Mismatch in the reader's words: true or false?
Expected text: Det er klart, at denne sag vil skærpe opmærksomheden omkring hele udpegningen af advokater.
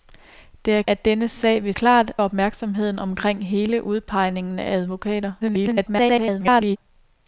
true